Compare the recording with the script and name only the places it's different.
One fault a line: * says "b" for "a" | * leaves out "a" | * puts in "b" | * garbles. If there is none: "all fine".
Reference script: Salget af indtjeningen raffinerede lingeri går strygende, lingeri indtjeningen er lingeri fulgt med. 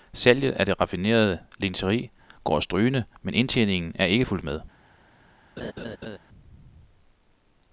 * says "det" for "indtjeningen"
* says "men" for "lingeri"
* says "ikke" for "lingeri"